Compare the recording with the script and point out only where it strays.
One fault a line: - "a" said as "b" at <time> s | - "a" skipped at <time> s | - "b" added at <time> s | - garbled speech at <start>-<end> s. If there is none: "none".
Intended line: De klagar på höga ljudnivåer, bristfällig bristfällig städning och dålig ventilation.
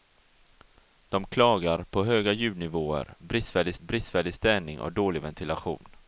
none